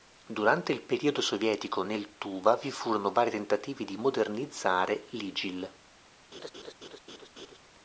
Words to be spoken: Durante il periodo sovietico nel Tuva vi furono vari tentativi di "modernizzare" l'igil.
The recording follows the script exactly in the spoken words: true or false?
true